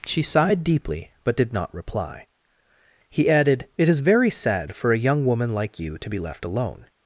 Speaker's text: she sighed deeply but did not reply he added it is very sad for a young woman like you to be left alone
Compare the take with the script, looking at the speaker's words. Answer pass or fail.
pass